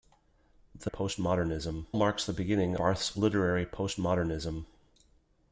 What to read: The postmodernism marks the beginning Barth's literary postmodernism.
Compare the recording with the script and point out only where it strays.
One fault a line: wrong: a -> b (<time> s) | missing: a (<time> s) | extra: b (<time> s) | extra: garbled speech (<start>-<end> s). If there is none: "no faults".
no faults